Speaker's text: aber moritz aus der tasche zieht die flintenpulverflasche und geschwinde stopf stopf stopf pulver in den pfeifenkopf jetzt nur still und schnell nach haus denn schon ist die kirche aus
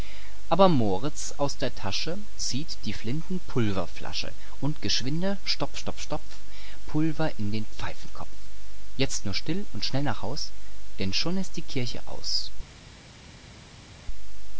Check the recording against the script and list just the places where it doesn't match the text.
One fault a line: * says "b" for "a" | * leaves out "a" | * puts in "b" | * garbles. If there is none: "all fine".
all fine